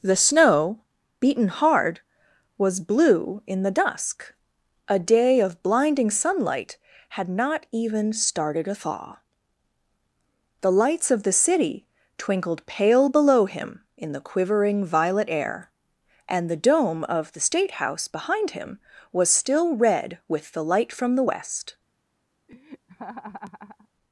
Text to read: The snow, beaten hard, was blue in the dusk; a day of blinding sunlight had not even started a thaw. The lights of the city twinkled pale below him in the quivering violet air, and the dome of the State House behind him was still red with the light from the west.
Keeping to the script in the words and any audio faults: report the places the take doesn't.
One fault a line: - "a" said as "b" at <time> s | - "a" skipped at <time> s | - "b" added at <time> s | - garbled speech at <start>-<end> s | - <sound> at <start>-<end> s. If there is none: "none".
- laugh at 22.5-23.9 s